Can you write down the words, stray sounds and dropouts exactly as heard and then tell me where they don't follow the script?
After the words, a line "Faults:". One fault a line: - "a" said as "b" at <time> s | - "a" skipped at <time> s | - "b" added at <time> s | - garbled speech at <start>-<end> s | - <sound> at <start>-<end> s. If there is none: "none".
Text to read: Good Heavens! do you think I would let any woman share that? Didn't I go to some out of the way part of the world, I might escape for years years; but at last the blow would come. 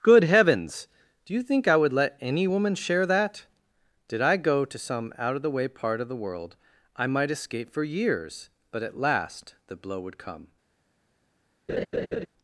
Good Heavens! do you think I would let any woman share that? Did I go to some out of the way part of the world, I might escape for years; but at last the blow would come.
Faults:
- "Didn't" said as "Did" at 4.1 s
- "years" skipped at 8.5 s
- laugh at 11.7-12.3 s